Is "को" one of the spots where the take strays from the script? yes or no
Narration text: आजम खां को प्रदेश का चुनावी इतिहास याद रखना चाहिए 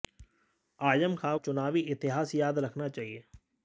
yes